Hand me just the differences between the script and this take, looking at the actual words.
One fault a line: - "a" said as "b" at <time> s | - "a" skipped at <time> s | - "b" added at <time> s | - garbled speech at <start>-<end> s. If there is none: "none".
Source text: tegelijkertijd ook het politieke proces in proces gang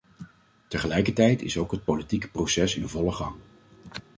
- "is" added at 1.4 s
- "proces" said as "volle" at 2.9 s